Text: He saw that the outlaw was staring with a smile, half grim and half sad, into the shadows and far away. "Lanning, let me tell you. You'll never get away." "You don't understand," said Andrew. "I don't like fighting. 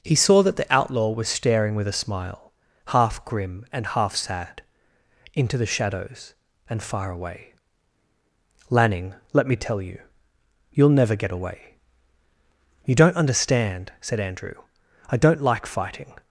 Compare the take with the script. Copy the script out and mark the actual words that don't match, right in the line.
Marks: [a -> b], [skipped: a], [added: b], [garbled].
He saw that the outlaw was staring with a smile, half grim and half sad, into the shadows and far away. "Lanning, let me tell you. You'll never get away." "You don't understand," said Andrew. "I don't like fighting.